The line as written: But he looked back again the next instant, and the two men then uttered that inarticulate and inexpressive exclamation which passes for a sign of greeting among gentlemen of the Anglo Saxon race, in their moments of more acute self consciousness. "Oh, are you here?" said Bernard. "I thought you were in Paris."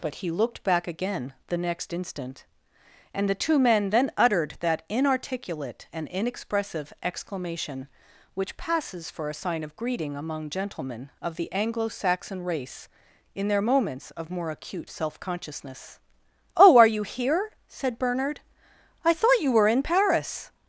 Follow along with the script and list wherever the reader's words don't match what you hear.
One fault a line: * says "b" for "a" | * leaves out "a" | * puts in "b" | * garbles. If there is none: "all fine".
all fine